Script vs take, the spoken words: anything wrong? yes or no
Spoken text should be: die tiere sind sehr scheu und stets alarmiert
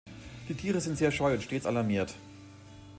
no